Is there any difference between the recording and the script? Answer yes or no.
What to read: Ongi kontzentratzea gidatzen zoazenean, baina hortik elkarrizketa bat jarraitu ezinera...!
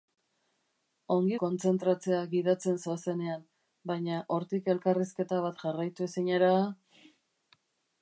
no